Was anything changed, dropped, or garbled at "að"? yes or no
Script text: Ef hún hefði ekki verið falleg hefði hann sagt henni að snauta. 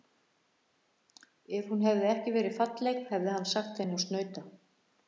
no